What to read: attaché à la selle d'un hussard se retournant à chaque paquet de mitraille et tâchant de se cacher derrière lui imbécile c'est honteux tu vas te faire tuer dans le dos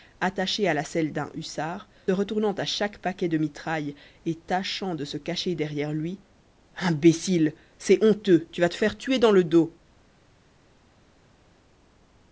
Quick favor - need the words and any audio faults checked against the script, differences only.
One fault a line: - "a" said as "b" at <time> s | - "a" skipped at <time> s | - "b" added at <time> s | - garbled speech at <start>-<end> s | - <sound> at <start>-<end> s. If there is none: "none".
- "se" skipped at 1.9 s